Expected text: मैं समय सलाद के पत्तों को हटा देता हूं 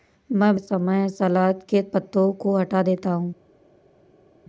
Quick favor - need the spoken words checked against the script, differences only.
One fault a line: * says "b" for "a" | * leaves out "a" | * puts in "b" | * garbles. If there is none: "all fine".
all fine